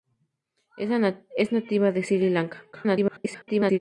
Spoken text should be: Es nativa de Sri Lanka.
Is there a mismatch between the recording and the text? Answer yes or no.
yes